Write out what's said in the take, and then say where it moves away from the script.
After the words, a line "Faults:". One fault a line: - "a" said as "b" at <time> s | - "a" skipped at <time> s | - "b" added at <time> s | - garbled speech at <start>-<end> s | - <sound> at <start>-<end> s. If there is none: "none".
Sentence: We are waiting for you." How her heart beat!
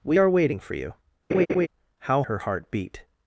We are waiting for you." How her heart beat!
Faults:
- laugh at 1.3-1.7 s